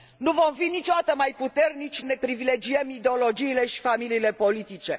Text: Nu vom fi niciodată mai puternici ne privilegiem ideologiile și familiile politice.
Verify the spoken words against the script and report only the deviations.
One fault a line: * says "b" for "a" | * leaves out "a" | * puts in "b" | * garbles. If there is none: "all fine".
all fine